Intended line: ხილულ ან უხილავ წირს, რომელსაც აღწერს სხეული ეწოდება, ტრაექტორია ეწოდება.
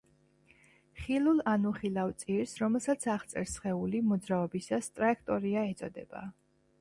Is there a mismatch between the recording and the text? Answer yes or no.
yes